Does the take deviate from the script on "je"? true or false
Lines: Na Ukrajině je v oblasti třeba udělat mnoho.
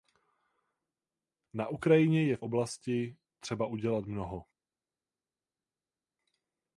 false